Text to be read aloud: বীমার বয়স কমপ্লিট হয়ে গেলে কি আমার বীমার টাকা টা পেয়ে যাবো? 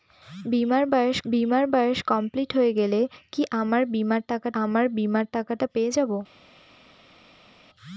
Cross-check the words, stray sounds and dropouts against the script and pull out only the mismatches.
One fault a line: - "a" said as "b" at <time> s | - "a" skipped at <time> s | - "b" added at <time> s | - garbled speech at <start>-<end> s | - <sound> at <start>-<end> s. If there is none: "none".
- "বীমার বয়স" added at 1.3 s
- "আমার বীমার টাকা" added at 4.6 s